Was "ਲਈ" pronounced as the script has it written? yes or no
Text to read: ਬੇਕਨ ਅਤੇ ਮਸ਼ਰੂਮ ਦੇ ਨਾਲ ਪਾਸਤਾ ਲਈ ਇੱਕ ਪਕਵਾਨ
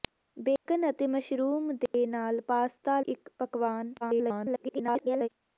no